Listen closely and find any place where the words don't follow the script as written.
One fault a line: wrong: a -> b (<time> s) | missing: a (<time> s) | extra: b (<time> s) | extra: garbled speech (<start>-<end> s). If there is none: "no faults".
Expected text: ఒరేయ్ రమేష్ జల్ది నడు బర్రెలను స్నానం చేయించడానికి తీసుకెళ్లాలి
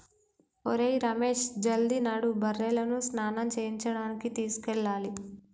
no faults